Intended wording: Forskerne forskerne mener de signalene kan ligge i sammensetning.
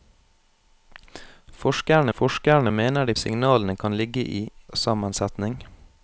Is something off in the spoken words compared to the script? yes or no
no